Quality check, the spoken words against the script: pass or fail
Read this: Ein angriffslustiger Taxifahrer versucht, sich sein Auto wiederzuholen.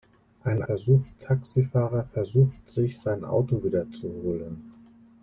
fail